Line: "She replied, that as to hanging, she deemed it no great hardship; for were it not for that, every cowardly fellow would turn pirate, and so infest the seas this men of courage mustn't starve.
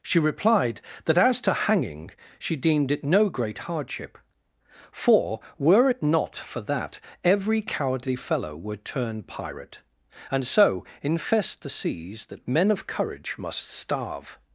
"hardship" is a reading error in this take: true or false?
false